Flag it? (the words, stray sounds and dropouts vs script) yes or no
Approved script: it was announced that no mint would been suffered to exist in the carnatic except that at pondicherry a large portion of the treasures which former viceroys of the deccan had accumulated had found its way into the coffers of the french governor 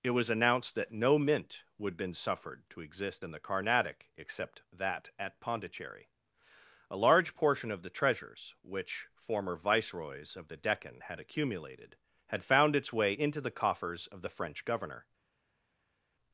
no